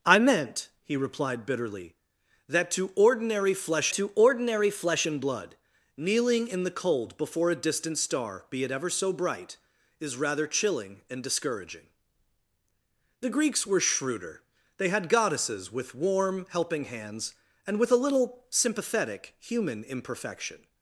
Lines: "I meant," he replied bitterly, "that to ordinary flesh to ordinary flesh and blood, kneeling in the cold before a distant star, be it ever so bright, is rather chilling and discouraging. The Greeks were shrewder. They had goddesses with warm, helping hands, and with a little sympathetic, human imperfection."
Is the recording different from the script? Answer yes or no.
no